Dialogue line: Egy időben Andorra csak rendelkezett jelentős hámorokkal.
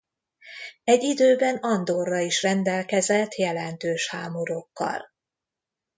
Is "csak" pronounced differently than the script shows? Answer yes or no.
yes